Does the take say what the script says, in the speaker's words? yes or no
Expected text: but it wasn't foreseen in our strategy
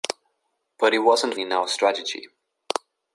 no